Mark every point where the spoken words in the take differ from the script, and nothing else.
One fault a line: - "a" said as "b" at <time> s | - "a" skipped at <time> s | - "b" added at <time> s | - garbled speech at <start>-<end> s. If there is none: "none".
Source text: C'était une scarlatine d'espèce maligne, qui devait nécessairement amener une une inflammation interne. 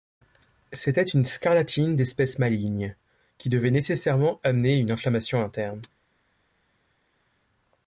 - "une" skipped at 4.9 s